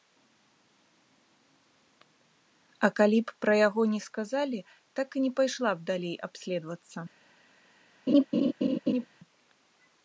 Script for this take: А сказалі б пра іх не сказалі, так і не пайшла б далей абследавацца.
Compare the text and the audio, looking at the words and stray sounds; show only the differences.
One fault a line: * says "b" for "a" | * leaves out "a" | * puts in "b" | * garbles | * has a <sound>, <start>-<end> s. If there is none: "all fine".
* says "калі" for "сказалі"
* says "яго" for "іх"
* has a laugh, 8.1-9.1 s